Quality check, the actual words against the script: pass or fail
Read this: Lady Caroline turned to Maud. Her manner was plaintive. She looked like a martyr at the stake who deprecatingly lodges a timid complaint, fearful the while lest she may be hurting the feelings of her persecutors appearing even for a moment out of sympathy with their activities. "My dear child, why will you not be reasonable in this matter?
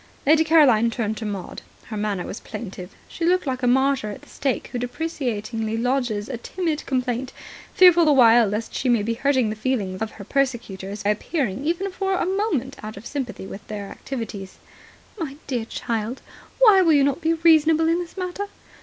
pass